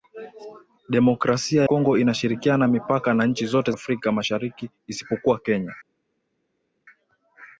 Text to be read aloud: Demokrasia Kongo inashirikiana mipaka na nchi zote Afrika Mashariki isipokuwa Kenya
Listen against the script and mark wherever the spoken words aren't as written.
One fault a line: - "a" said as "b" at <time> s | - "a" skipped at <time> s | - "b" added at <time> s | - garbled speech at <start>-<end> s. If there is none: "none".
none